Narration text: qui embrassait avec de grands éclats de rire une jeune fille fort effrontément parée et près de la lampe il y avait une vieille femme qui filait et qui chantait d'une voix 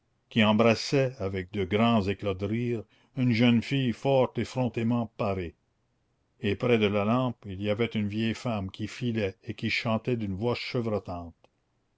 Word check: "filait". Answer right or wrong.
right